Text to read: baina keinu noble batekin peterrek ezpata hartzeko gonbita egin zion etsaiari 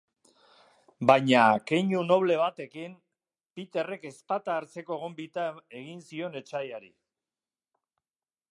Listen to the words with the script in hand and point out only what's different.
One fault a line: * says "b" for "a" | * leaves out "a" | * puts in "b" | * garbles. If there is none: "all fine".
all fine